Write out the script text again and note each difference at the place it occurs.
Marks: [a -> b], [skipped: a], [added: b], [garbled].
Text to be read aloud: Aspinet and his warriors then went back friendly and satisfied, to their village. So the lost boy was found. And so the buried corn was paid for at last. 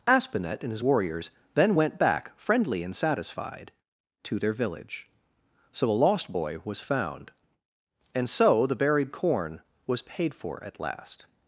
Aspinet and his warriors then went back friendly and satisfied, to their village. So [the -> a] lost boy was found. And so the buried corn was paid for at last.